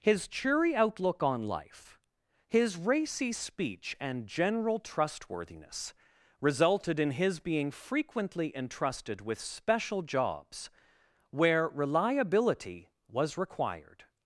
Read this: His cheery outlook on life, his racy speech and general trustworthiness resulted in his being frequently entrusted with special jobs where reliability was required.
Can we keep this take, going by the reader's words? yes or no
yes